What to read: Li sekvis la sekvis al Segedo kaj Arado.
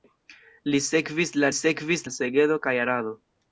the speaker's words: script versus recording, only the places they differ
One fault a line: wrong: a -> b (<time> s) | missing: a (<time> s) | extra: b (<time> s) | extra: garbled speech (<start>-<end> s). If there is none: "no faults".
no faults